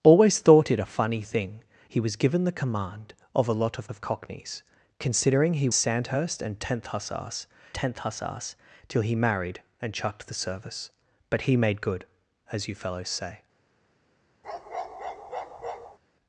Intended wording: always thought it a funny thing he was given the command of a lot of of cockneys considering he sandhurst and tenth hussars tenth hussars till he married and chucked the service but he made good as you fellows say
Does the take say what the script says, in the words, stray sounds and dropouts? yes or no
no